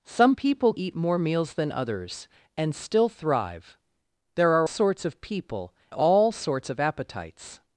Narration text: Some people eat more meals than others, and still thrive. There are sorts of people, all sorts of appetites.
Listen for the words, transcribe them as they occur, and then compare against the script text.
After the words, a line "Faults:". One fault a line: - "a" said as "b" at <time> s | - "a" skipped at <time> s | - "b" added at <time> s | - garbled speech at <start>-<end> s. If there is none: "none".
Some people eat more meals than others, and still thrive. There are sorts of people, all sorts of appetites.
Faults:
none